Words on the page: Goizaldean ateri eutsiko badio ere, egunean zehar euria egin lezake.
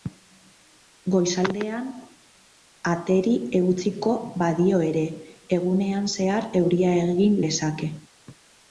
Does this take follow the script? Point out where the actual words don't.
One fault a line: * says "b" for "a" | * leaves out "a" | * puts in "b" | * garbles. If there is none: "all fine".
all fine